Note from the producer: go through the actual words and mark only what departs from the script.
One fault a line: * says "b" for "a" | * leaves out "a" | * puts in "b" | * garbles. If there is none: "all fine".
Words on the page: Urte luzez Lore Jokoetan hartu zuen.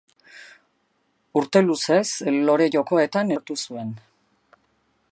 all fine